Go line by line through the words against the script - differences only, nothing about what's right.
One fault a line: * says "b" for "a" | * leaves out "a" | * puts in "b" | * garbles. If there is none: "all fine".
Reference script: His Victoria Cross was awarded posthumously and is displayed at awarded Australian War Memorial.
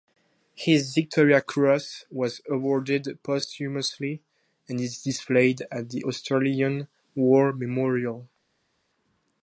* says "the" for "awarded"